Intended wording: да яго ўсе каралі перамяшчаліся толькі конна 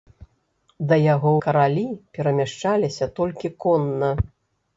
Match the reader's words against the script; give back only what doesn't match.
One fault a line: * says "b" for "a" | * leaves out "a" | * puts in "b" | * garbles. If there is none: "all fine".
* leaves out "ўсе"